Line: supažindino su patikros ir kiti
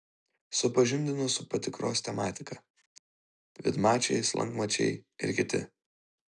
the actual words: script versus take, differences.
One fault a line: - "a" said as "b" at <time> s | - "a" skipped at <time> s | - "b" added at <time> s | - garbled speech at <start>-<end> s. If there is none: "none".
- "tematika vidmačiai slankmačiai" added at 2.1 s